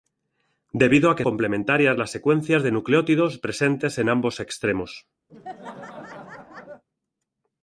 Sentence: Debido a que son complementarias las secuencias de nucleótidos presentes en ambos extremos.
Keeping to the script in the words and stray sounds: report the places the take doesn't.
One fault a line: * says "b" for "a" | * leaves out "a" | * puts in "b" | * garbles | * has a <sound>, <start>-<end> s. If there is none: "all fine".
* leaves out "son"
* has a laugh, 5.3-6.8 s